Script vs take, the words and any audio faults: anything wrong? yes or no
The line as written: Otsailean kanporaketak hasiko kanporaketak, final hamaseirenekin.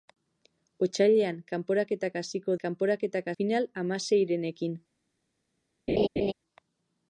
yes